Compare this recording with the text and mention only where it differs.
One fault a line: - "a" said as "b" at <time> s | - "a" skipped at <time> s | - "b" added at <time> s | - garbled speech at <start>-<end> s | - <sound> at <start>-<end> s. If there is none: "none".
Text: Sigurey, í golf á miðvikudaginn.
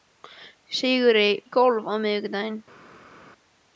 none